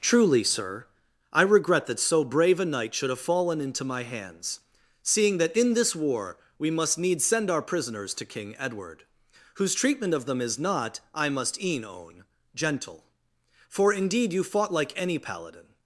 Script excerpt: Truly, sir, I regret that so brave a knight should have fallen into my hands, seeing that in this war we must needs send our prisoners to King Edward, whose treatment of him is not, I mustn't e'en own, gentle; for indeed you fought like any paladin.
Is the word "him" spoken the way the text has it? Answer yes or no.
no